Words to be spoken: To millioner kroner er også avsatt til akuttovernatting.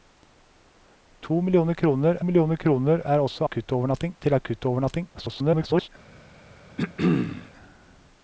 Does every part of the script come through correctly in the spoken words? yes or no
no